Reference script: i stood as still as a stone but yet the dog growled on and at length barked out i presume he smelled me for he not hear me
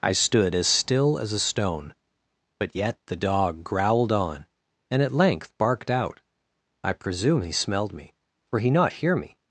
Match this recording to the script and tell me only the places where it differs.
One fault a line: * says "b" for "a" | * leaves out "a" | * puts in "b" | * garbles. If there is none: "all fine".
all fine